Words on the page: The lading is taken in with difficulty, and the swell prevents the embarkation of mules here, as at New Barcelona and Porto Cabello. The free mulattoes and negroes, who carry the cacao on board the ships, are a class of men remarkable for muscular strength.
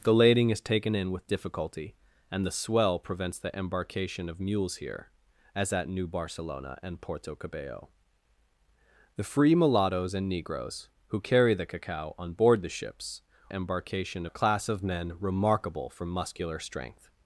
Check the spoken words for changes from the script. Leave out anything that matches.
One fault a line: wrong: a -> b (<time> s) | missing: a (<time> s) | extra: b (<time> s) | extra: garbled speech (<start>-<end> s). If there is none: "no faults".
wrong: are -> embarkation (13.5 s)